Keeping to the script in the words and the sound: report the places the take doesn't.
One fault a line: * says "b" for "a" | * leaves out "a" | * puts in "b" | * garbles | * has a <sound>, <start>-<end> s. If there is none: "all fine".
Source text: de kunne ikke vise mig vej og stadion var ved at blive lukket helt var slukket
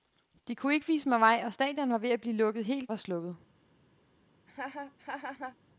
* has a laugh, 4.5-5.6 s